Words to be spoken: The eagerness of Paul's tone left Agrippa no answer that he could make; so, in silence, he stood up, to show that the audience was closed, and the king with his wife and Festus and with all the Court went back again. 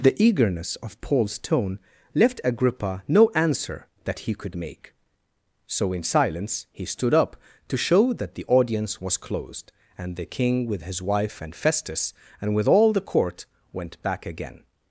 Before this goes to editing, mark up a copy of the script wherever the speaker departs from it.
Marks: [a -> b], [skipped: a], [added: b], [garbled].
The eagerness of Paul's tone left Agrippa no answer that he could make; so, in silence, he stood up, to show that the audience was closed, and the king with his wife and Festus and with all the Court went back again.